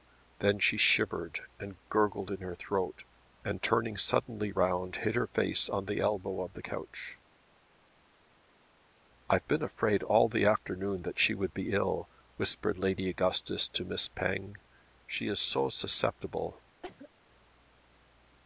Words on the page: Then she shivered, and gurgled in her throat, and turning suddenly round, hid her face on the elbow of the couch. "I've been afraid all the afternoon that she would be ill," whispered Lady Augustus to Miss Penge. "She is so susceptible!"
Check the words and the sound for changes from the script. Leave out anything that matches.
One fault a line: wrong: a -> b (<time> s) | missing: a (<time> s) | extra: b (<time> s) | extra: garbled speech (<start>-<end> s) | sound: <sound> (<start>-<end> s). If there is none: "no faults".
sound: cough (16.8-17.1 s)